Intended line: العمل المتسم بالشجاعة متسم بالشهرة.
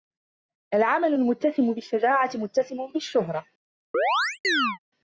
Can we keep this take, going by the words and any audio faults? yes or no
no